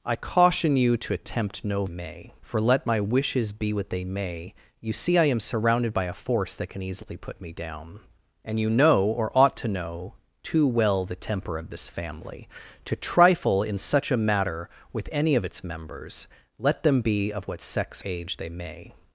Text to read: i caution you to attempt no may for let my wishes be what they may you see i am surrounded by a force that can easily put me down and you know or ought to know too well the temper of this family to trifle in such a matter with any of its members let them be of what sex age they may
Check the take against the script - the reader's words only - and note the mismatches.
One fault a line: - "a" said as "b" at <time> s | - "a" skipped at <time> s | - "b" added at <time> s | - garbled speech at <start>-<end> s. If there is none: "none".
none